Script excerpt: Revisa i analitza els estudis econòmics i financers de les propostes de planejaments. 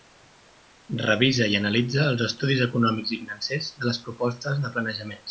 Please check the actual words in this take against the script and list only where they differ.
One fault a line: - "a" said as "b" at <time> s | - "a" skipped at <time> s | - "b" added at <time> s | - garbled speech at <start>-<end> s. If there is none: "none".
none